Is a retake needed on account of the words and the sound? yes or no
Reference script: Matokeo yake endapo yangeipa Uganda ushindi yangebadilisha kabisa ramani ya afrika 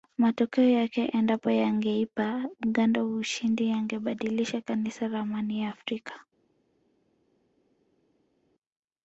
no